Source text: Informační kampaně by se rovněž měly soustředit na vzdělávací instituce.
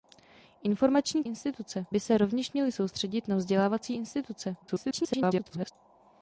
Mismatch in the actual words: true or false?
true